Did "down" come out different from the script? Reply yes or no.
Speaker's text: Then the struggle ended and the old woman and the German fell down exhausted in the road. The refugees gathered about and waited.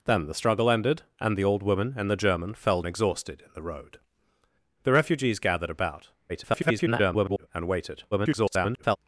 yes